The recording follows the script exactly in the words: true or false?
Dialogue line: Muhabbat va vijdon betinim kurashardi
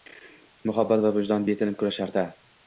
true